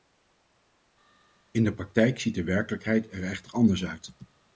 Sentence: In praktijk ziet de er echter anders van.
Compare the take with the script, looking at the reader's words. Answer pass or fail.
fail